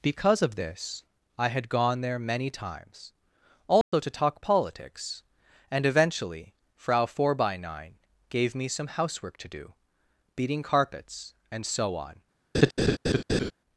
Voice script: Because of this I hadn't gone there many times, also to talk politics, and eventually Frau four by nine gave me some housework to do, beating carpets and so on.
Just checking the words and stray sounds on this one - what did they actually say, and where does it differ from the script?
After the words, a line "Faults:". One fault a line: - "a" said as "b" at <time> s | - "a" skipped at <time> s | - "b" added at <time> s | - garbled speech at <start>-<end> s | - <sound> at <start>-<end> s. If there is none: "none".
Because of this I had gone there many times, also to talk politics, and eventually Frau four by nine gave me some housework to do, beating carpets and so on.
Faults:
- "hadn't" said as "had" at 1.5 s
- dropout at 3.8-3.9 s
- laugh at 12.5-13.5 s